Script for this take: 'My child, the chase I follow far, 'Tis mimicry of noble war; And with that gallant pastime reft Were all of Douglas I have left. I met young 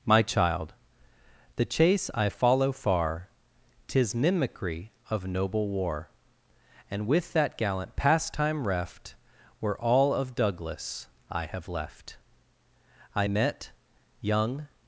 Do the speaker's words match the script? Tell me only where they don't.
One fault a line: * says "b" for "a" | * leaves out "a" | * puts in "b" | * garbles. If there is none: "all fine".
all fine